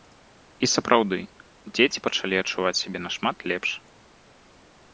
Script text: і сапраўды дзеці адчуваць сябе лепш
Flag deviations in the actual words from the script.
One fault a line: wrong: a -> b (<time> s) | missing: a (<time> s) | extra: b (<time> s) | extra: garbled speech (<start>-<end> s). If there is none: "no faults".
extra: пачалі (2.1 s)
extra: нашмат (3.1 s)